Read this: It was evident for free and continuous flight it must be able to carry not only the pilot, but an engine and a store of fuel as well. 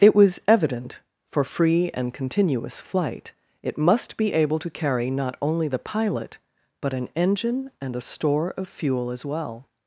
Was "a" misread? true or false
false